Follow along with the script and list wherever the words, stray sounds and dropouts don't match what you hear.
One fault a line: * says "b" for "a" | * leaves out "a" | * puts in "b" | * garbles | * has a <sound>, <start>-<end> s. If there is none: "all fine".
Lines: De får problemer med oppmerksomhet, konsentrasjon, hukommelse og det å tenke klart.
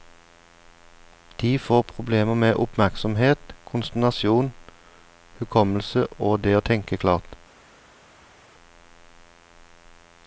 all fine